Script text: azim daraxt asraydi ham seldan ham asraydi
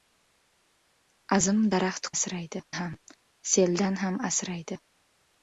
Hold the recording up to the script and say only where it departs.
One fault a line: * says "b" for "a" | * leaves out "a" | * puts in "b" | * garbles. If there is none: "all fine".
all fine